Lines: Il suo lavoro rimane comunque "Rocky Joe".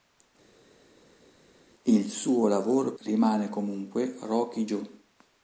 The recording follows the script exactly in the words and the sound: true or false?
true